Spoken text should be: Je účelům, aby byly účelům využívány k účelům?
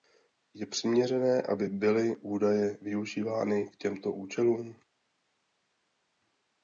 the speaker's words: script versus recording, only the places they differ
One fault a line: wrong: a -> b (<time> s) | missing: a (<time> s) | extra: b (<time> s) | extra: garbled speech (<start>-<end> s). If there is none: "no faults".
wrong: účelům -> přiměřené (0.7 s)
wrong: účelům -> údaje (2.2 s)
extra: těmto (3.8 s)